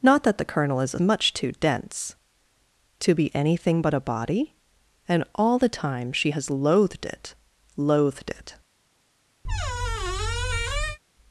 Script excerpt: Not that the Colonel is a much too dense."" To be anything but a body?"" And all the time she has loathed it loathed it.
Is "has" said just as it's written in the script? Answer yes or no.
yes